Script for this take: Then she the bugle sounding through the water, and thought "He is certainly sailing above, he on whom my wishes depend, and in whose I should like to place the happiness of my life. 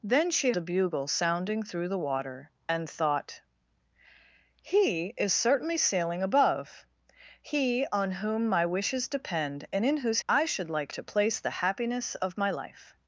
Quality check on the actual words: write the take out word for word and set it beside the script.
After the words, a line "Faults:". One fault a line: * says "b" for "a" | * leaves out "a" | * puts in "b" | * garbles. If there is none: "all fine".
Then she the bugle sounding through the water, and thought "He is certainly sailing above, he on whom my wishes depend, and in whose I should like to place the happiness of my life.
Faults:
all fine